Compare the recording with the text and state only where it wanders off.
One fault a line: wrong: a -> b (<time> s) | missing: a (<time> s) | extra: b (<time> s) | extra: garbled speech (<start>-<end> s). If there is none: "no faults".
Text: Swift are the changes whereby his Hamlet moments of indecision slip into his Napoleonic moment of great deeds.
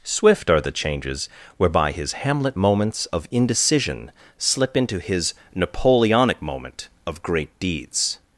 no faults